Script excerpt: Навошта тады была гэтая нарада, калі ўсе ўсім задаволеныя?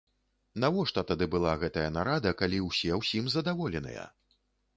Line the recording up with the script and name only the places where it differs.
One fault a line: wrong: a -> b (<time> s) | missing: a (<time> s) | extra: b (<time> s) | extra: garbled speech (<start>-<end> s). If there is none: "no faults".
no faults